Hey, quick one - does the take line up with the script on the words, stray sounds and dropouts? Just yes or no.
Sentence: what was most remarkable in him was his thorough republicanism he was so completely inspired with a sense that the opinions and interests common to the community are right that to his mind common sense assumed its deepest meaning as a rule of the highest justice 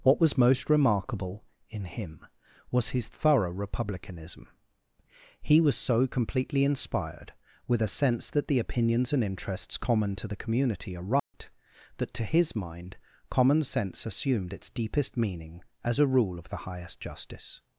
no